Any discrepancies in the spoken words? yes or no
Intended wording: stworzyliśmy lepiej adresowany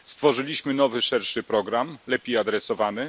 yes